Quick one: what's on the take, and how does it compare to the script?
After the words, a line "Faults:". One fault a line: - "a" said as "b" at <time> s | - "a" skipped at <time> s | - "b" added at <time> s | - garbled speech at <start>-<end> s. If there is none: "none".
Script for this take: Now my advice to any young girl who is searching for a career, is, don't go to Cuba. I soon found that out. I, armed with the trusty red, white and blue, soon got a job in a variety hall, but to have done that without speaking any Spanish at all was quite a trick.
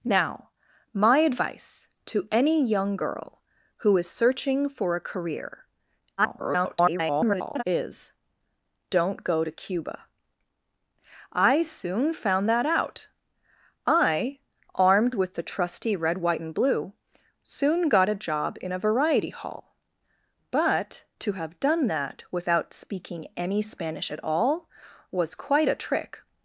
Now my advice to any young girl who is searching for a career, [garbled] is, don't go to Cuba. I soon found that out. I, armed with the trusty red, white and blue, soon got a job in a variety hall, but to have done that without speaking any Spanish at all was quite a trick.
Faults:
- garbled speech at 6.2-7.6 s